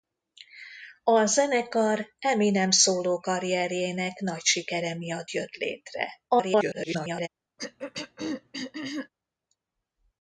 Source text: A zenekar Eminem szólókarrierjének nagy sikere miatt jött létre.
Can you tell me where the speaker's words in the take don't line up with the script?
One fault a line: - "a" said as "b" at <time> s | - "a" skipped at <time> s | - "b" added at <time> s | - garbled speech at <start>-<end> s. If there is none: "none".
- garbled speech at 6.3-7.3 s